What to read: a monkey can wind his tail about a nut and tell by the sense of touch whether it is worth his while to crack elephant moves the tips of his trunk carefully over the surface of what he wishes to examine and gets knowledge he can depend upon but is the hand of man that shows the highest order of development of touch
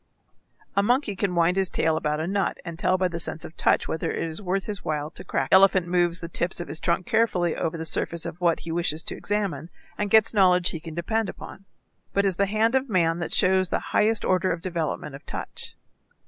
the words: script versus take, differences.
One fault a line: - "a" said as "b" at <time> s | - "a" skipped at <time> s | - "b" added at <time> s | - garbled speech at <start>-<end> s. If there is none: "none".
none